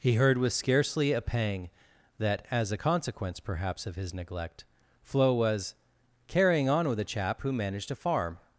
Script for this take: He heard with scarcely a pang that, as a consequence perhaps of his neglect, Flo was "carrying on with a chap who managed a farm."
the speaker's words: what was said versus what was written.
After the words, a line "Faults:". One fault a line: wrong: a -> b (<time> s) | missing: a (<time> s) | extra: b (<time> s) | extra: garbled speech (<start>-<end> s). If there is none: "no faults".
He heard with scarcely a pang that, as a consequence perhaps of his neglect, Flo was "carrying on with a chap who managed a farm."
Faults:
no faults